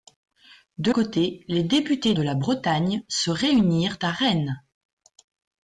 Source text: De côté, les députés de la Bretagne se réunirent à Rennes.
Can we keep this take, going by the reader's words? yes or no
yes